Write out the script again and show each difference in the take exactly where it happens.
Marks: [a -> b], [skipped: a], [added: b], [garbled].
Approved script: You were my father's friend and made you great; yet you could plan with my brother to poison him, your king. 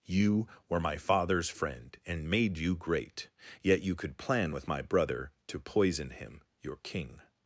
You were my father's friend and made you great; yet you could plan with my brother to poison him, your king.